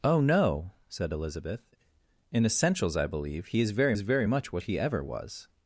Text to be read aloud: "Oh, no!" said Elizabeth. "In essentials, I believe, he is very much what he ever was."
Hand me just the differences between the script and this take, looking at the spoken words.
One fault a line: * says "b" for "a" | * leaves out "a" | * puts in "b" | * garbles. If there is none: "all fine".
* puts in "is very"